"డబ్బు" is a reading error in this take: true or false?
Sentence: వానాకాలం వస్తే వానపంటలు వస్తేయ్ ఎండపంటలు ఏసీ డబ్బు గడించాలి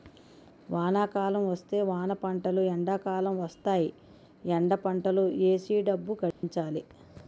false